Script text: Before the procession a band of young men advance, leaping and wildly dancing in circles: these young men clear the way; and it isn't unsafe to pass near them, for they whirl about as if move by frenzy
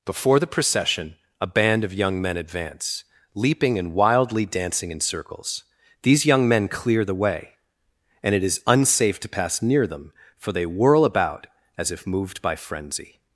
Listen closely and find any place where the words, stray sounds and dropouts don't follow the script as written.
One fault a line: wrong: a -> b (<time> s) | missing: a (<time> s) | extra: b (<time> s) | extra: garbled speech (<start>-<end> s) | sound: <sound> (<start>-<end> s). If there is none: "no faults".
wrong: isn't -> is (8.4 s)
wrong: move -> moved (12.1 s)